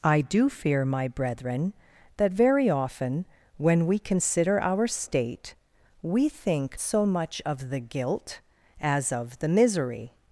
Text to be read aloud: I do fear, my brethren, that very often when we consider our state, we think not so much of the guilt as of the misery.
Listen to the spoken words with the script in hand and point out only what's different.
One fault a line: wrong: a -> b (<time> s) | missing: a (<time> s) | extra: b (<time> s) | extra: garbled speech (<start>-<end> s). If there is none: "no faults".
missing: not (6.8 s)